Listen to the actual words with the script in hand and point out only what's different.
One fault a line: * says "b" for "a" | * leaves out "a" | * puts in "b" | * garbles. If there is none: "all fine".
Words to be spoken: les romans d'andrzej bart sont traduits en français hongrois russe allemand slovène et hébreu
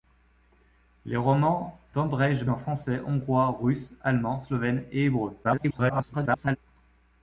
* leaves out "bart sont traduits"
* garbles